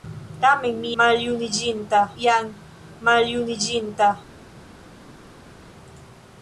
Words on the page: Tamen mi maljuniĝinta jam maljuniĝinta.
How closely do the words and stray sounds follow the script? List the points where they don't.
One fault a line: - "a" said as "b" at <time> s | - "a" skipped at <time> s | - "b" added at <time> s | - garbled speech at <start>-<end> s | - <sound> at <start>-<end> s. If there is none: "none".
none